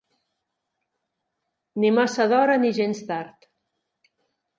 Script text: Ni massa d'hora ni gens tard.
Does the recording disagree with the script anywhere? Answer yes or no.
no